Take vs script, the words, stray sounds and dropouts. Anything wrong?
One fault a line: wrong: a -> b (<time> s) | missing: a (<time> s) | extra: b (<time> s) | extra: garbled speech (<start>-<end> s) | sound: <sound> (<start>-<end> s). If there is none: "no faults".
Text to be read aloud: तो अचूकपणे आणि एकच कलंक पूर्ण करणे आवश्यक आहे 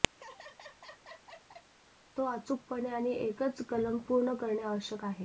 sound: laugh (0.1-1.7 s)